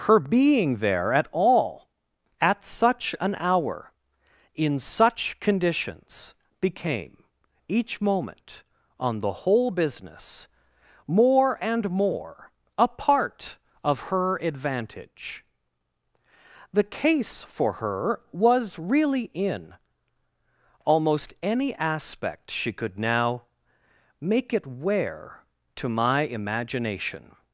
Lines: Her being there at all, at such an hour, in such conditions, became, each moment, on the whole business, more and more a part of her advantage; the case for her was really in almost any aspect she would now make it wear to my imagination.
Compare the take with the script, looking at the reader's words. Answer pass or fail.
fail